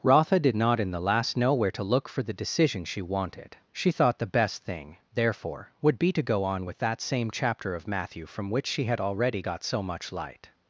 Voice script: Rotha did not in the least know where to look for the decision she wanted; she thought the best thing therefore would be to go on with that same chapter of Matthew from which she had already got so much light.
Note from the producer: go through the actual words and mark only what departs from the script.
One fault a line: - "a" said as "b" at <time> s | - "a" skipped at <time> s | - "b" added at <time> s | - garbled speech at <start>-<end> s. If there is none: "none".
- "least" said as "last" at 1.0 s